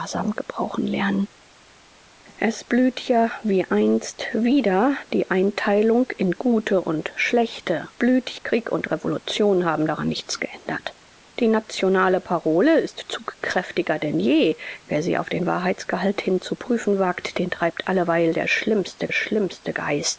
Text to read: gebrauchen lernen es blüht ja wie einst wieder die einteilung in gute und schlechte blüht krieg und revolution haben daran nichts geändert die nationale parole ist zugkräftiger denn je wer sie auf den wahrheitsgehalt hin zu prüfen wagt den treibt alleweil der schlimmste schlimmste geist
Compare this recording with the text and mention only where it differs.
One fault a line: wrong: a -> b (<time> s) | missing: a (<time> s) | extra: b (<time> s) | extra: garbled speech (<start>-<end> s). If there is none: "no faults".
no faults